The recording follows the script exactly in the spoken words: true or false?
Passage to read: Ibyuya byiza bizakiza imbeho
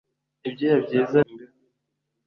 false